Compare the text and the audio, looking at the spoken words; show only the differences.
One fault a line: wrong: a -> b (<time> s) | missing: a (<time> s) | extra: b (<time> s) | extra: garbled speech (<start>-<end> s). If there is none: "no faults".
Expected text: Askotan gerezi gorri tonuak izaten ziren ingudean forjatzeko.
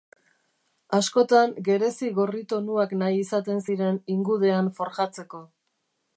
extra: nahi (3.0 s)